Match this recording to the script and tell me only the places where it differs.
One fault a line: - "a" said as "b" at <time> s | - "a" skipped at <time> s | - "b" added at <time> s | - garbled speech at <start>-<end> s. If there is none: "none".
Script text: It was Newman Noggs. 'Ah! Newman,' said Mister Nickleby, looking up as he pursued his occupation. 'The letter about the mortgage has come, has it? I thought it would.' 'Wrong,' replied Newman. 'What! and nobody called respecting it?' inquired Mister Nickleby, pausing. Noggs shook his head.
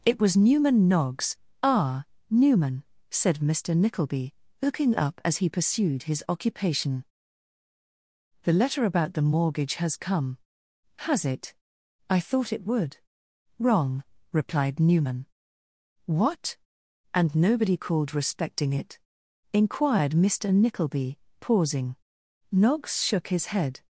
none